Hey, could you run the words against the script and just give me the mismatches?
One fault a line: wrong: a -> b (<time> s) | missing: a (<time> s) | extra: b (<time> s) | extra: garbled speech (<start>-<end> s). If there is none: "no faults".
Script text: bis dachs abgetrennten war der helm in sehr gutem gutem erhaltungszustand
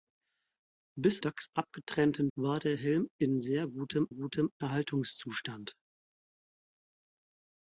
no faults